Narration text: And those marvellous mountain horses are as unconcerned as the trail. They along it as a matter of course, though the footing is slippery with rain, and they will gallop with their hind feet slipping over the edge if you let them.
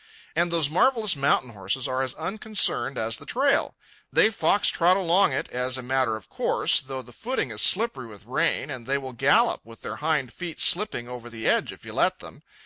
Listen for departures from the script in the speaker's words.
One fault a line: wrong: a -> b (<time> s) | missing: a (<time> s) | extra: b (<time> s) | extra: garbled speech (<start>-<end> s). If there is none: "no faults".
extra: fox trot (4.3 s)